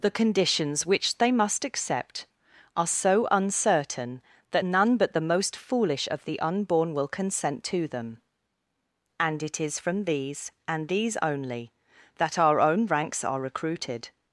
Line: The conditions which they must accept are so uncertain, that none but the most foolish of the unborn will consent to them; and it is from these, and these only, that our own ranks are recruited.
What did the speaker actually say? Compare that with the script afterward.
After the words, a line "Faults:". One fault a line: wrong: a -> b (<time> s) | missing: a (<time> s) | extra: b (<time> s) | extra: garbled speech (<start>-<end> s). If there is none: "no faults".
The conditions which they must accept are so uncertain, that none but the most foolish of the unborn will consent to them; and it is from these, and these only, that our own ranks are recruited.
Faults:
no faults